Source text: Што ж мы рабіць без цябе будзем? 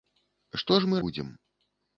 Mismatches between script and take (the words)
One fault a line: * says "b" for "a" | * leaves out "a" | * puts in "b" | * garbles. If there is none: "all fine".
* leaves out "рабіць без цябе"